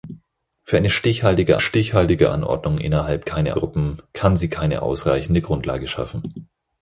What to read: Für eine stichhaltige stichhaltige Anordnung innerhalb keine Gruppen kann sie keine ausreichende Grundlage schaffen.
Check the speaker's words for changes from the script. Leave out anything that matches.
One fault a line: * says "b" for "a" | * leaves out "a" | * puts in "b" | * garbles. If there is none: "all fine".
all fine